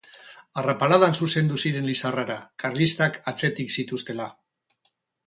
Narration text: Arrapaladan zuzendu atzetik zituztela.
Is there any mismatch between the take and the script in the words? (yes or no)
yes